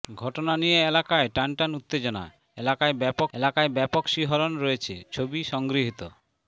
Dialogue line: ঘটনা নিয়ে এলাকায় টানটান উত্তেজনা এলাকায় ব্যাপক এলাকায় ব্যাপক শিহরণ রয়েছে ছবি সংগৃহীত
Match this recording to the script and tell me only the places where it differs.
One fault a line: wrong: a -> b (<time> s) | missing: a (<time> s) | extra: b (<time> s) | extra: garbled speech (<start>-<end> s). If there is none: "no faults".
no faults